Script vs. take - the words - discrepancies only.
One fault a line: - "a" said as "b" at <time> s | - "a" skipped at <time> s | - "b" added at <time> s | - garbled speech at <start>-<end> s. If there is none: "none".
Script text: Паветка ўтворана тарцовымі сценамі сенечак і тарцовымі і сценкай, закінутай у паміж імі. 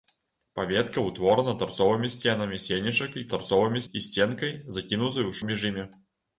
none